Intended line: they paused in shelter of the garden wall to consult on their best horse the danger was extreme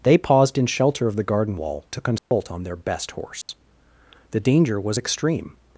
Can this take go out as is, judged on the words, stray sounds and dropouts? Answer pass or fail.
fail